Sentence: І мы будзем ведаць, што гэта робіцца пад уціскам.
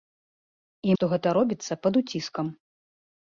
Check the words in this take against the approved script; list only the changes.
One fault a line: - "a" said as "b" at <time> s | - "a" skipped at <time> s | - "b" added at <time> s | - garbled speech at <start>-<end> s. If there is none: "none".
- "мы будзем ведаць" skipped at 0.9 s